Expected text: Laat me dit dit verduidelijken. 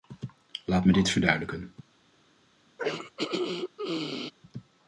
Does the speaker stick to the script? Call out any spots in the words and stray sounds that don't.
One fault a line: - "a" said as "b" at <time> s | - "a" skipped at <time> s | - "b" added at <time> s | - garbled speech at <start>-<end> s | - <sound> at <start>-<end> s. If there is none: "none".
- "dit" skipped at 1.1 s
- throat clearing at 2.8-4.3 s